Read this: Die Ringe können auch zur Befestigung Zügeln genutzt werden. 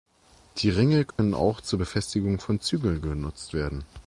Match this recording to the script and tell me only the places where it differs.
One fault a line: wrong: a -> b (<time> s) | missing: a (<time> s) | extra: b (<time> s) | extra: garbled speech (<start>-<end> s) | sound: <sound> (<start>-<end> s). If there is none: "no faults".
sound: dropout (1.1-1.2 s)
extra: von (2.4 s)